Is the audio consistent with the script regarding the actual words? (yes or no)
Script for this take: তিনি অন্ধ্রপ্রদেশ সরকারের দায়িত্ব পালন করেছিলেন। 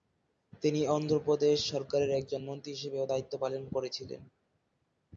no